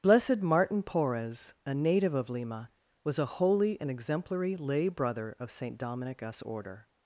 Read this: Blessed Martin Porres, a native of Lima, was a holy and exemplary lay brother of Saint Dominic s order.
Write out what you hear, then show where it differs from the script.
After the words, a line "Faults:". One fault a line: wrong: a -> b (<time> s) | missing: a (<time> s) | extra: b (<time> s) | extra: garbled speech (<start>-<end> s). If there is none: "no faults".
Blessed Martin Porres, a native of Lima, was a holy and exemplary lay brother of Saint Dominic s order.
Faults:
no faults